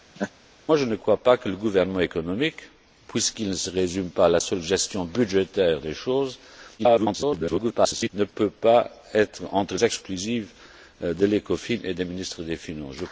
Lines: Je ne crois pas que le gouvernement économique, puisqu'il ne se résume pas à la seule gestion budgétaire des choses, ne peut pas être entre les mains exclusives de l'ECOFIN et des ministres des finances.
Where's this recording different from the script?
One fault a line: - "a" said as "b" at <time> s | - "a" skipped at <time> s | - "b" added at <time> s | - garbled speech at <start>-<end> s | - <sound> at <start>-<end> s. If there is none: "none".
- laugh at 0.2-0.3 s
- garbled speech at 6.8-8.1 s
- "les mains" skipped at 9.8 s